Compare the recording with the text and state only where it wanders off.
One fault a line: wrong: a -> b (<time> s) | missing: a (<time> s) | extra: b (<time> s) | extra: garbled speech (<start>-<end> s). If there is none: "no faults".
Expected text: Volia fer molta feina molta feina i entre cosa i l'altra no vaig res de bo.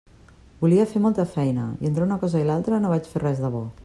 missing: molta feina (1.7 s)
extra: una (2.1 s)
extra: fer (3.1 s)